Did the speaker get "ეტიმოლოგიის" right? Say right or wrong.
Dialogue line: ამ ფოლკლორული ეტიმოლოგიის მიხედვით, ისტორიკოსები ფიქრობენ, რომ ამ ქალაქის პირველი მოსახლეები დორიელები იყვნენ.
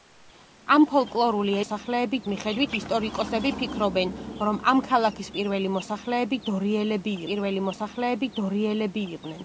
wrong